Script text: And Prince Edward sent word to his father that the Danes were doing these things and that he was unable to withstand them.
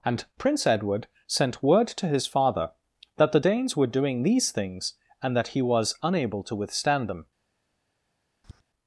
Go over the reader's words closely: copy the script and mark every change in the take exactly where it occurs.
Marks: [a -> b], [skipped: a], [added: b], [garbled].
And Prince Edward sent word to his father that the Danes were doing these things and that he was unable to withstand them.